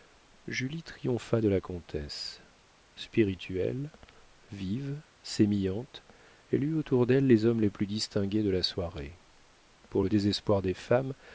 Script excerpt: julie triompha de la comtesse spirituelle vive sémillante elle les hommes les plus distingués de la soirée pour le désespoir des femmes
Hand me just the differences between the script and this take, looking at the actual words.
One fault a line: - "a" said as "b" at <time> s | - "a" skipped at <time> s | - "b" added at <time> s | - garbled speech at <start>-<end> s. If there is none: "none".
- "eut autour d'elle" added at 6.6 s